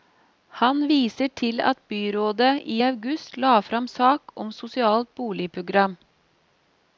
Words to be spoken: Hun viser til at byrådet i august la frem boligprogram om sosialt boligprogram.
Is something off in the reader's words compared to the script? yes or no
yes